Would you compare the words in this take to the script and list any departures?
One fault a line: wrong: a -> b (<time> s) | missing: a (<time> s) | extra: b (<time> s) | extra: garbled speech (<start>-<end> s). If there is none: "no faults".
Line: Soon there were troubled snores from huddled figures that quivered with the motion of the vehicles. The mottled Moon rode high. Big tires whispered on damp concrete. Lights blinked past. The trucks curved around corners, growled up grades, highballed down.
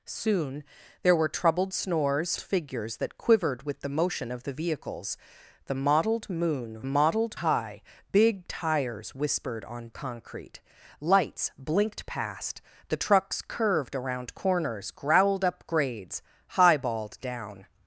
missing: from huddled (2.4 s)
wrong: rode -> mottled (6.8 s)
missing: damp (9.9 s)